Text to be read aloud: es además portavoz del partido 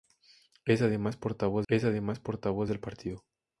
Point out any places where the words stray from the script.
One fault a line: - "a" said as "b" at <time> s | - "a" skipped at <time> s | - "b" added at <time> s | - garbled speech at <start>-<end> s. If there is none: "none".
- "es además portavoz" added at 1.7 s